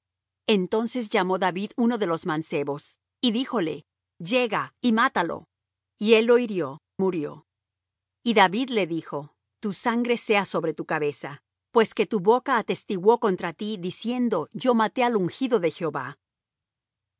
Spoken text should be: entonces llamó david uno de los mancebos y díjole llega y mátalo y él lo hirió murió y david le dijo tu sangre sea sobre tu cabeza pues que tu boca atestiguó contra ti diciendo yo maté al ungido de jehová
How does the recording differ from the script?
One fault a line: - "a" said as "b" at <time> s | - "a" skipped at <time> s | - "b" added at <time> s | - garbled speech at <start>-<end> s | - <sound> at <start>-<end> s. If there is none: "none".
none